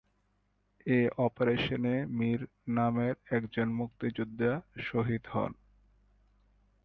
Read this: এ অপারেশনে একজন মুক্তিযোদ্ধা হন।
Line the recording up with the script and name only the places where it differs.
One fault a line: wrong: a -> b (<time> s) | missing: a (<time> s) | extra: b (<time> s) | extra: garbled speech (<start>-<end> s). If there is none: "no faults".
extra: মীর নামের (2.1 s)
extra: শহীদ (4.8 s)